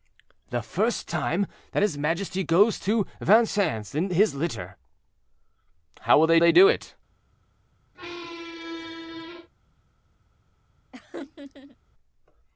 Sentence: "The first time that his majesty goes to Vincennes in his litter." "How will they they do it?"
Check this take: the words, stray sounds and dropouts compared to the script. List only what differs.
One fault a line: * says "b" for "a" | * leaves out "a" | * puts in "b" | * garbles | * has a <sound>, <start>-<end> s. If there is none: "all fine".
* has a squeak, 7.9-9.5 s
* has a laugh, 10.9-11.8 s